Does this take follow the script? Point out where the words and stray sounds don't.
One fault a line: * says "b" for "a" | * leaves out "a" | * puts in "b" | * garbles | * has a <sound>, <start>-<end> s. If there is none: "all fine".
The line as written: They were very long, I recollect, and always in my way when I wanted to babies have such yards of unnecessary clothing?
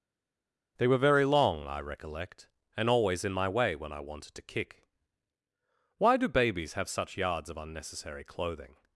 * puts in "kick Why do"